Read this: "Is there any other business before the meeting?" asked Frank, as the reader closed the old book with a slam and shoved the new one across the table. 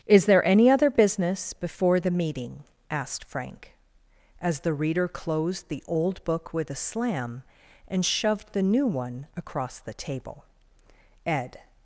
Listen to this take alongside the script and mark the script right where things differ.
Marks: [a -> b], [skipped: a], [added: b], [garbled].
"Is there any other business before the meeting?" asked Frank, as the reader closed the old book with a slam and shoved the new one across the table. [added: Ed]